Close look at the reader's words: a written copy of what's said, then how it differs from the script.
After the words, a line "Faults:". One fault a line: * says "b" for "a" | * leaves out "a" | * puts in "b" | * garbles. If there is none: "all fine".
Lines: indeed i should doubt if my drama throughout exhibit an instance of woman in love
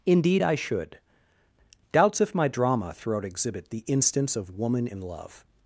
indeed i should doubts if my drama throughout exhibit the instance of woman in love
Faults:
* says "doubts" for "doubt"
* says "the" for "an"